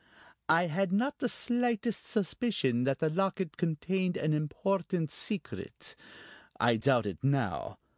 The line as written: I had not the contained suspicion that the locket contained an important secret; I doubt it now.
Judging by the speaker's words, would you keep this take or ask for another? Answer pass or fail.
fail